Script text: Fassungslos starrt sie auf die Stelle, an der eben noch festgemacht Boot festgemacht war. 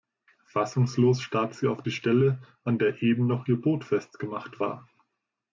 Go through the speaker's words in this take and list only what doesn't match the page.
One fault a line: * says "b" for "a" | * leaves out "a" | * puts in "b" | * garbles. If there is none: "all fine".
* says "ihr" for "festgemacht"